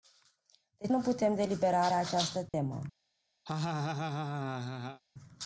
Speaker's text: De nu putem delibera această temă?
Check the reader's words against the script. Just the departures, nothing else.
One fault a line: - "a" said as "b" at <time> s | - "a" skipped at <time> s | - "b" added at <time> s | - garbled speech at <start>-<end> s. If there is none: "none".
none